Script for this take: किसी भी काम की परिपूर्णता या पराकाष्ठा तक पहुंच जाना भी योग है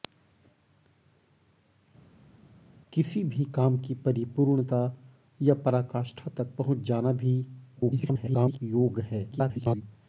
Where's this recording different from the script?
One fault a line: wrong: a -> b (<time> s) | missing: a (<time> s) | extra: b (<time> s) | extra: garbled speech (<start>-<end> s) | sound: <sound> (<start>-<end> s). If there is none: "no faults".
extra: garbled speech (7.8-8.6 s)
extra: garbled speech (9.3-9.8 s)